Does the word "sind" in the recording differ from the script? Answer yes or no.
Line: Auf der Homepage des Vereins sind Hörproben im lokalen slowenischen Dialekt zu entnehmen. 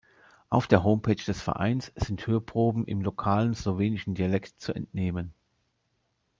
no